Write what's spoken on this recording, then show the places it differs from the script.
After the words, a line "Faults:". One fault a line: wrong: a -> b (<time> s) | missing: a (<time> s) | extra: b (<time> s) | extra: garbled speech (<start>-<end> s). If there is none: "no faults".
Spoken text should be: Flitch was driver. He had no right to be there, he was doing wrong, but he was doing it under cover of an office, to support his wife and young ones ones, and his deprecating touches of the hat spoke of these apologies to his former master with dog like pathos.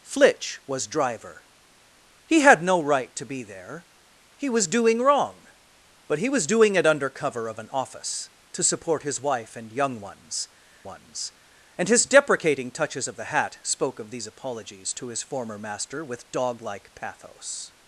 Flitch was driver. He had no right to be there, he was doing wrong, but he was doing it under cover of an office, to support his wife and young ones ones, and his deprecating touches of the hat spoke of these apologies to his former master with dog like pathos.
Faults:
no faults